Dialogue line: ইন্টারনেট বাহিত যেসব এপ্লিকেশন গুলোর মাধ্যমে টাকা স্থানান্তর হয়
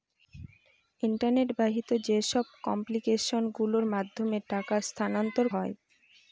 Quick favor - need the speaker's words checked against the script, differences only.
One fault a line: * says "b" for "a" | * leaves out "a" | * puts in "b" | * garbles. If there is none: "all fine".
all fine